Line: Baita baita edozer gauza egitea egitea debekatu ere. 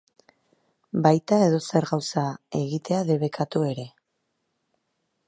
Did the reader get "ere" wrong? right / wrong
right